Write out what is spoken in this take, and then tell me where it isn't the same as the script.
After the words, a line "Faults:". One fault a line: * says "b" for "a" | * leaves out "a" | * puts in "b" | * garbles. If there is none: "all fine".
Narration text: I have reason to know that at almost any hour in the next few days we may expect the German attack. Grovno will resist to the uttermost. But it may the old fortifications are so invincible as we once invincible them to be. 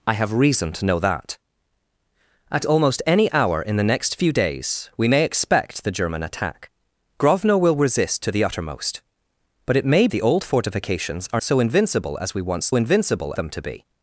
I have reason to know that at almost any hour in the next few days we may expect the German attack. Grovno will resist to the uttermost. But it may the old fortifications are so invincible as we once invincible them to be.
Faults:
all fine